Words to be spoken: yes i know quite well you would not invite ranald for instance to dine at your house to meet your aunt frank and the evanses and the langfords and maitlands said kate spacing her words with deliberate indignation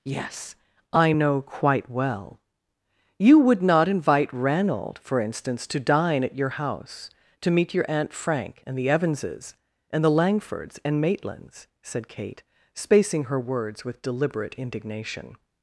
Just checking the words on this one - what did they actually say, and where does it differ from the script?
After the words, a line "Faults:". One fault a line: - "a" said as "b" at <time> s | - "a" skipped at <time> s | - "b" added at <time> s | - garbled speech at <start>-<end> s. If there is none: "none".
yes i know quite well you would not invite ranald for instance to dine at your house to meet your aunt frank and the evanses and the langfords and maitlands said kate spacing her words with deliberate indignation
Faults:
none